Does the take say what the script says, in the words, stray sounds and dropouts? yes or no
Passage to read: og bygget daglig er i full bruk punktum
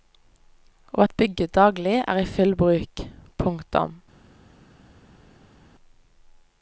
no